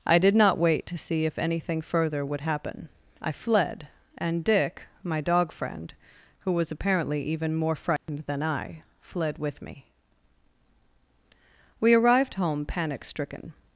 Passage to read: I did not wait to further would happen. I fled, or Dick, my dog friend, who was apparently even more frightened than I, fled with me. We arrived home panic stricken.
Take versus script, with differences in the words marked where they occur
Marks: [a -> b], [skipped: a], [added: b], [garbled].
I did not wait to [added: see if anything] further would happen. I fled, [or -> and] Dick, my dog friend, who was apparently even more frightened than I, fled with me. We arrived home panic stricken.